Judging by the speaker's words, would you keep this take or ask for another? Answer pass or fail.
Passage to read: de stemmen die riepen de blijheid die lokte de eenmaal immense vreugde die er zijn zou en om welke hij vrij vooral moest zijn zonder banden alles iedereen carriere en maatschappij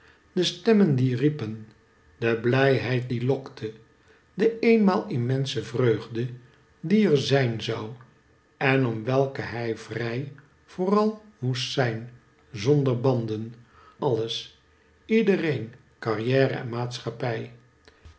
pass